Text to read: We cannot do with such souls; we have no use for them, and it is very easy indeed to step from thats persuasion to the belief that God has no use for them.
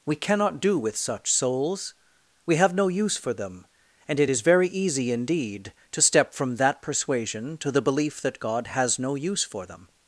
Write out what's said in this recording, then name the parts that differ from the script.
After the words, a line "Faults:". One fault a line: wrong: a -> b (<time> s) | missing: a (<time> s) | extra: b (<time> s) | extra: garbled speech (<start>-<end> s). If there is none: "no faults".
We cannot do with such souls; we have no use for them, and it is very easy indeed to step from that persuasion to the belief that God has no use for them.
Faults:
wrong: thats -> that (6.5 s)